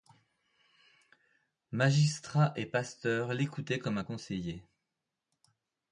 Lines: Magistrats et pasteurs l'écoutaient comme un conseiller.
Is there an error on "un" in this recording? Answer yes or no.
no